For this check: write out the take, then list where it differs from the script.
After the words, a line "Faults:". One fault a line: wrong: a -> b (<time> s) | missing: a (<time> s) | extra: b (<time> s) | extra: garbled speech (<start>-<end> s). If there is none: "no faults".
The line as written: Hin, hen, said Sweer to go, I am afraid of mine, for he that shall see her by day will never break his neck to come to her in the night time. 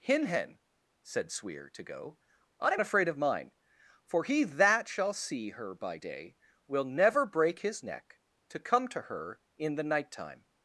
Hin, hen, said Sweer to go, I am afraid of mine, for he that shall see her by day will never break his neck to come to her in the night time.
Faults:
no faults